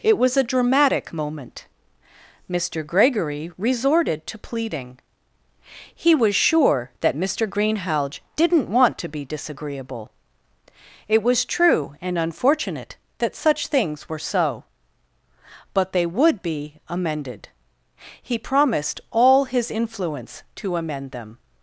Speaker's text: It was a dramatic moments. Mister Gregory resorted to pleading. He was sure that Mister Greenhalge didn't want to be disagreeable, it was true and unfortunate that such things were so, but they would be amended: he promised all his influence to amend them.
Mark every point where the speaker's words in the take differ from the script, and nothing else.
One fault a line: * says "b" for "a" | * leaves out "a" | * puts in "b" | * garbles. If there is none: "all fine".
* says "moment" for "moments"